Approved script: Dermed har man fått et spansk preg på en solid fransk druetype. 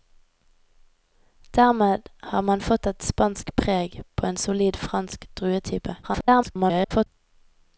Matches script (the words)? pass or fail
fail